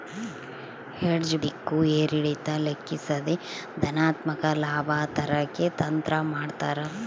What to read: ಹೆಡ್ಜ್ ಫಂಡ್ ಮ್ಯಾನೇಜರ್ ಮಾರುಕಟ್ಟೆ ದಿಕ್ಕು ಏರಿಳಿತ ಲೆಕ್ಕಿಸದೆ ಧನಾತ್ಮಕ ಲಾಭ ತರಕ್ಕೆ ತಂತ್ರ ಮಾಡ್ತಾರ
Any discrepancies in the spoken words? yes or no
yes